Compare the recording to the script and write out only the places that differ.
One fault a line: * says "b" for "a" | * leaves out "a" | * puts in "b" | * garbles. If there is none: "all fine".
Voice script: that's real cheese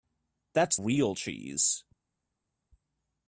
all fine